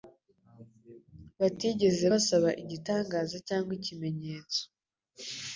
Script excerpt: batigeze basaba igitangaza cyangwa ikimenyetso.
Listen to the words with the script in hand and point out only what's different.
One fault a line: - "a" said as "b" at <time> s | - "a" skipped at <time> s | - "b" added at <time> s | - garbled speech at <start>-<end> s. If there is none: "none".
none